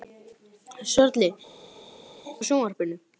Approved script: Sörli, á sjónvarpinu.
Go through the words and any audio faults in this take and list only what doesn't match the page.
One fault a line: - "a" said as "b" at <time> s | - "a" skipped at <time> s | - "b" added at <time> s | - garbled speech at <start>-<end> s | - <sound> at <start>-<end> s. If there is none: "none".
none